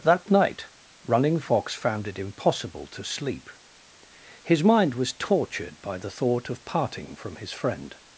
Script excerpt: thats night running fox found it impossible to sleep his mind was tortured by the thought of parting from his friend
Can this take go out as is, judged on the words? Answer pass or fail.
fail